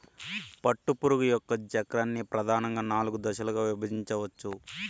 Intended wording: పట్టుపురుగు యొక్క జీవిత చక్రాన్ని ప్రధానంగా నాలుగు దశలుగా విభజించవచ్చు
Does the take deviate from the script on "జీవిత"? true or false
true